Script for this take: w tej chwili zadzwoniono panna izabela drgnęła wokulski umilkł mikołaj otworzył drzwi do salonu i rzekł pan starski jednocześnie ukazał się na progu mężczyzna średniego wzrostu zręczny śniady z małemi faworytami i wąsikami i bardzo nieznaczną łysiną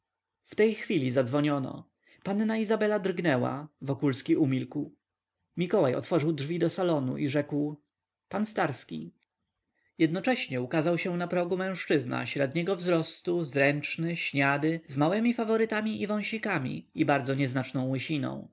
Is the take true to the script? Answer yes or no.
yes